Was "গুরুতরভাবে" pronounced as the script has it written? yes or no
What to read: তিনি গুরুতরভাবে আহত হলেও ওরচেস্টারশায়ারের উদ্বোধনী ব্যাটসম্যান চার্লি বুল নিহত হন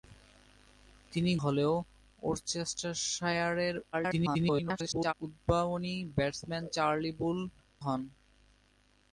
no